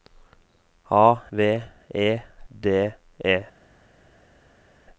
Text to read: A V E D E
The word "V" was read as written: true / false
true